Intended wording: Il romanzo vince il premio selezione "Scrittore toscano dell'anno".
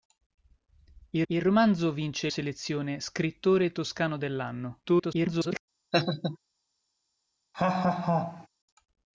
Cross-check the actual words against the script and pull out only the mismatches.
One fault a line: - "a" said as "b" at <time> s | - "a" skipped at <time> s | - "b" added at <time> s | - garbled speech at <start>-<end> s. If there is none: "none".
- "il" added at 1.3 s
- "il premio" skipped at 2.3 s
- garbled speech at 4.8-5.6 s